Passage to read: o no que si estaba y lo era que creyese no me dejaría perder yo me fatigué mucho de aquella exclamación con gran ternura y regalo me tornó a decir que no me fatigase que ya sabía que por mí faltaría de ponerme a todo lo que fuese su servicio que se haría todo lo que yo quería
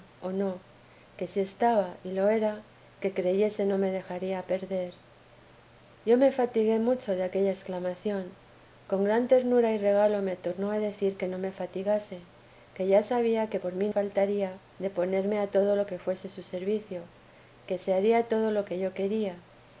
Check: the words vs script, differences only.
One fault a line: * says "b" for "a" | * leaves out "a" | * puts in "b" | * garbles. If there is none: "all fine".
all fine